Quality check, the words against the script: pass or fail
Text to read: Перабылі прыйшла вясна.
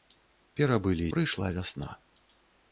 pass